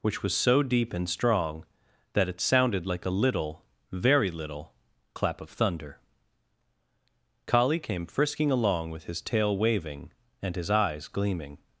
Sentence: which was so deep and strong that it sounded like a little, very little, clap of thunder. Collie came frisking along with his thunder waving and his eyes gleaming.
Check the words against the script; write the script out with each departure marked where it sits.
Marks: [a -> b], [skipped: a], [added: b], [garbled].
which was so deep and strong that it sounded like a little, very little, clap of thunder. Collie came frisking along with his [thunder -> tail] waving and his eyes gleaming.